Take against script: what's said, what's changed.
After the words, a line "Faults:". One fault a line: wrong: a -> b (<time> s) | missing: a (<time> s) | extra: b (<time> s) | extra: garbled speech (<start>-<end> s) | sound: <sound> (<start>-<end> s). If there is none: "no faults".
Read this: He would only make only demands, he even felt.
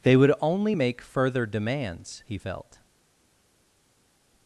They would only make further demands, he felt.
Faults:
wrong: He -> They (0.0 s)
wrong: only -> further (1.0 s)
missing: even (2.4 s)